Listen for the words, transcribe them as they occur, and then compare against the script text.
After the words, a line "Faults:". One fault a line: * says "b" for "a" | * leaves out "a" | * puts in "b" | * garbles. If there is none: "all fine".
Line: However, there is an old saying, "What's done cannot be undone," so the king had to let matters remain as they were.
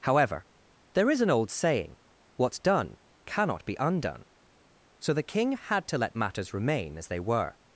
However, there is an old saying, "What's done cannot be undone," so the king had to let matters remain as they were.
Faults:
all fine